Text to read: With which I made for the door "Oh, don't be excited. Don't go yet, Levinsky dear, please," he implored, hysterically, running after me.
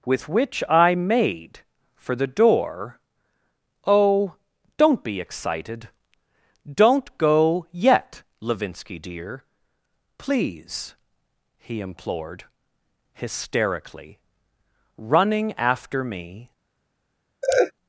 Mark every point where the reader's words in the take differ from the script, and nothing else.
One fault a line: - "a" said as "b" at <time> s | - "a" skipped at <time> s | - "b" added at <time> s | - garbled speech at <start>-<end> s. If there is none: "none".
none